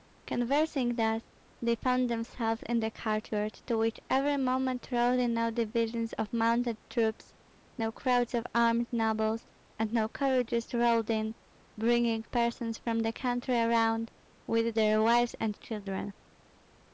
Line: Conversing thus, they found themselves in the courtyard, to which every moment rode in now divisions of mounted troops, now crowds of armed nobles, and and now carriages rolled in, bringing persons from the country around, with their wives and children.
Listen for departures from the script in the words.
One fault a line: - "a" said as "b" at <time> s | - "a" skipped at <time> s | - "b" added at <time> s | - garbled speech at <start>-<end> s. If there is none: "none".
- "and" skipped at 9.9 s